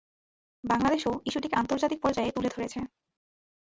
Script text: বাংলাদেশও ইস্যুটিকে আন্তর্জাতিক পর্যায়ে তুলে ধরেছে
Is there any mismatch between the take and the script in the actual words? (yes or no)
no